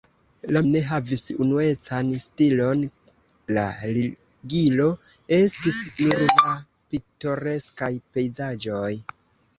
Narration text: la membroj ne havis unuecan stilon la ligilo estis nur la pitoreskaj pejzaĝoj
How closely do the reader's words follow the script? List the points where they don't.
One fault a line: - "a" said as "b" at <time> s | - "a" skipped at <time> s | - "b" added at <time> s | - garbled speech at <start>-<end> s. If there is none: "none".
- "membroj" skipped at 0.6 s